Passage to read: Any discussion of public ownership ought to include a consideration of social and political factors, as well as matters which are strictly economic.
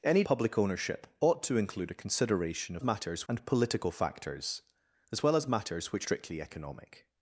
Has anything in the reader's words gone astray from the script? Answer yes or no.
yes